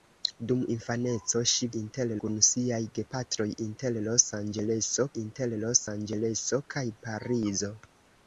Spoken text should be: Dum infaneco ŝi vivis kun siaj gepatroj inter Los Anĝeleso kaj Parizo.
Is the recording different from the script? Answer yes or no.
yes